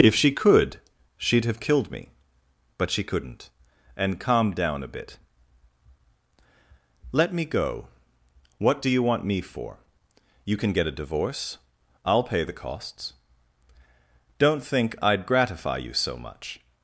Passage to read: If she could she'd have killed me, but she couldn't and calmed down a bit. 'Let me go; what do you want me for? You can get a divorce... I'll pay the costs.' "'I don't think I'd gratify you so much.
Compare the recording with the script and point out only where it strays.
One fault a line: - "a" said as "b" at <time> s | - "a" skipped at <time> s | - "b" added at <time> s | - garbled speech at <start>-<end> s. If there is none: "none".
- "I" skipped at 13.1 s